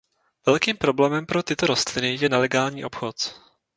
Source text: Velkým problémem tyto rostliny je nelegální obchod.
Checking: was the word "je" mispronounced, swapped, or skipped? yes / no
no